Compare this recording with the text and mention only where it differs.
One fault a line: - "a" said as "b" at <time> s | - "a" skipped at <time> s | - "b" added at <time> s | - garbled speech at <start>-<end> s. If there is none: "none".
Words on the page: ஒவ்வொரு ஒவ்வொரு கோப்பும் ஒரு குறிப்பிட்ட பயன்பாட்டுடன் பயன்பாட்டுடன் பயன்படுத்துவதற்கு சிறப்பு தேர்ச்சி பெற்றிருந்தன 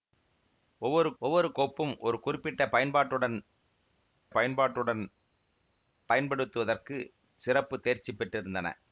none